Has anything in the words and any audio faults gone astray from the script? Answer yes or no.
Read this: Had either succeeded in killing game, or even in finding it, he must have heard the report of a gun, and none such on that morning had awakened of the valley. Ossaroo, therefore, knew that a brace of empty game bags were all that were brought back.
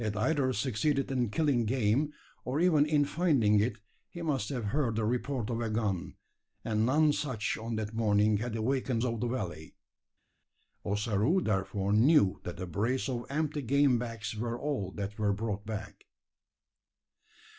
no